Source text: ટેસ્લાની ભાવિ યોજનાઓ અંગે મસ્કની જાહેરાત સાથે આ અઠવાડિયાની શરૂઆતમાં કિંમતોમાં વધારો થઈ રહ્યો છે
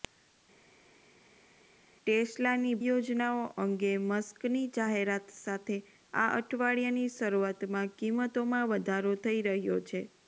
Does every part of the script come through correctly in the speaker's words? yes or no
no